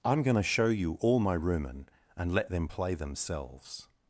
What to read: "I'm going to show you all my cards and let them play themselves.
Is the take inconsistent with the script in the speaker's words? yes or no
yes